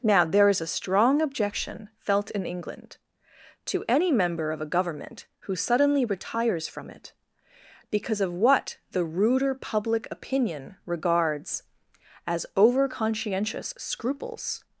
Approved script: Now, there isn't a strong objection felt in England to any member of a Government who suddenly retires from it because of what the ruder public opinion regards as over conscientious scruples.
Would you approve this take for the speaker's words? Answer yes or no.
no